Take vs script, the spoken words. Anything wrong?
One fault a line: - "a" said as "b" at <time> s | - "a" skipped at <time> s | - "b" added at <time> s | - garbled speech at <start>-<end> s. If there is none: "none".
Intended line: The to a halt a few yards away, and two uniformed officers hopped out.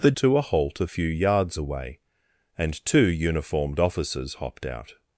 none